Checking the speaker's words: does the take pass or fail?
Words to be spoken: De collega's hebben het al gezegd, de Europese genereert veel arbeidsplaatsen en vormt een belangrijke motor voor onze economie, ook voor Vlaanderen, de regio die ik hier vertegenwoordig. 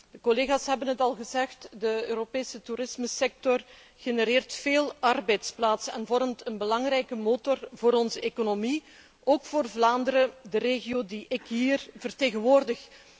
fail